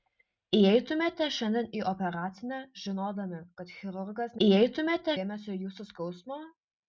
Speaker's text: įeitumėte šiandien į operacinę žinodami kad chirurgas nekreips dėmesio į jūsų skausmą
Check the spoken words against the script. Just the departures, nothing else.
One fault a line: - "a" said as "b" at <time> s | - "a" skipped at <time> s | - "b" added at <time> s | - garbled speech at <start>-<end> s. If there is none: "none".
- "nekreips" said as "įeitumėte" at 4.5 s